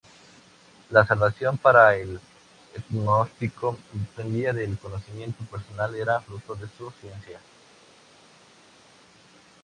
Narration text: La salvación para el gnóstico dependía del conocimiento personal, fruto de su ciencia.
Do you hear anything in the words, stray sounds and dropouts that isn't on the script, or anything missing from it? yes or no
yes